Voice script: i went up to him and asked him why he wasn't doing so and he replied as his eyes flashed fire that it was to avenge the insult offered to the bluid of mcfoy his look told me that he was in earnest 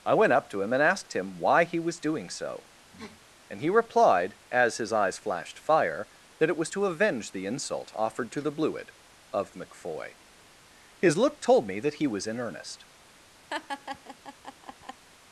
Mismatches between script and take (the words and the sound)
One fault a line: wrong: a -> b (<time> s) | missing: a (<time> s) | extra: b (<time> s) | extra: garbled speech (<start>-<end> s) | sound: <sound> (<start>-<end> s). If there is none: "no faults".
wrong: wasn't -> was (1.8 s)
sound: sniff (2.9-3.2 s)
sound: laugh (13.5-15.0 s)